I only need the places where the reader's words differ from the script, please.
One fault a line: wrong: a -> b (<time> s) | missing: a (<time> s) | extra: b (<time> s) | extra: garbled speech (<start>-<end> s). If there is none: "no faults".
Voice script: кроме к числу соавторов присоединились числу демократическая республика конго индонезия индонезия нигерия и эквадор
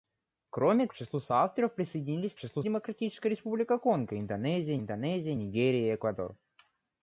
no faults